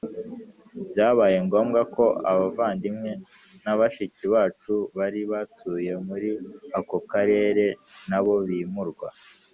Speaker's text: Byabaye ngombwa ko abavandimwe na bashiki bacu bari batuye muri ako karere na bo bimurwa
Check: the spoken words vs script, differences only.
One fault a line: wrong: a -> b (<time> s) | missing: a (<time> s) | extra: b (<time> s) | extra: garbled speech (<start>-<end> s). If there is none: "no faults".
no faults